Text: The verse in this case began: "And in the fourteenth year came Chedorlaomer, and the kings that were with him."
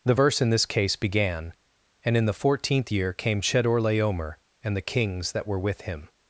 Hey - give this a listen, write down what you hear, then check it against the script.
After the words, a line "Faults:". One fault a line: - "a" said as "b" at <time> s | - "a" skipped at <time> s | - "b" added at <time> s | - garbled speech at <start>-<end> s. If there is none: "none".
The verse in this case began: "And in the fourteenth year came Chedorlaomer, and the kings that were with him."
Faults:
none